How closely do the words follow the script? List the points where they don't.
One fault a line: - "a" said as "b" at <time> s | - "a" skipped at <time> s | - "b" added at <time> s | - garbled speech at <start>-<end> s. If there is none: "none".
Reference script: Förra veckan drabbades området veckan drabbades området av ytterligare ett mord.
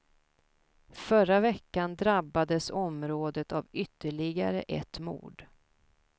- "veckan drabbades området" skipped at 3.5 s